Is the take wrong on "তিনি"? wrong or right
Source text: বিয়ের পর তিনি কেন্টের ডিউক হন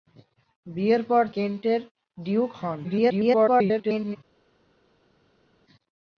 wrong